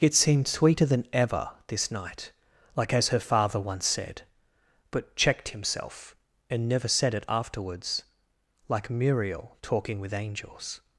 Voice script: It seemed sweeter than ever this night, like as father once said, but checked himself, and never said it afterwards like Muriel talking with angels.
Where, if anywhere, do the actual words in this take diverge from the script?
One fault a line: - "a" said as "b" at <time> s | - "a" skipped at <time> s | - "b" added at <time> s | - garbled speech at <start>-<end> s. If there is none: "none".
- "her" added at 3.1 s